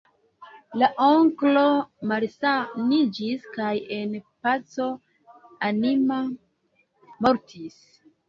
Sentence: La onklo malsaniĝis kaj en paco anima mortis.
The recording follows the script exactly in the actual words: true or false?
true